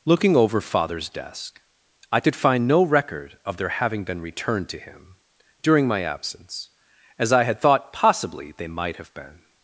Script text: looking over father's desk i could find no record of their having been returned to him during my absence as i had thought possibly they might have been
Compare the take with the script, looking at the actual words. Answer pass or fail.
pass